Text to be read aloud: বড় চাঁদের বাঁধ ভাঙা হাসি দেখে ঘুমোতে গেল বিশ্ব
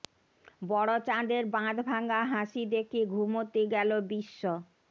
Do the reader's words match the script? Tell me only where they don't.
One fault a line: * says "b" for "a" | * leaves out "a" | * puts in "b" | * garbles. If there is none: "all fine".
all fine